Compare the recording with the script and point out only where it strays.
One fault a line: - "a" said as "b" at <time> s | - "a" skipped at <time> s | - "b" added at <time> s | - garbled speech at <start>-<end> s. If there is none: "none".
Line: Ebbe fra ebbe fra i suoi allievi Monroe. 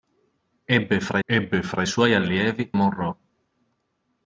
none